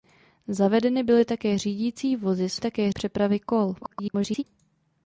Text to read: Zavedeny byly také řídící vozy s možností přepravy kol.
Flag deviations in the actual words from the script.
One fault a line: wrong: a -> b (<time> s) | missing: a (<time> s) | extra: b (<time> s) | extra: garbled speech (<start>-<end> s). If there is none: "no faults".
wrong: možností -> také (2.6 s)
extra: garbled speech (3.8-4.4 s)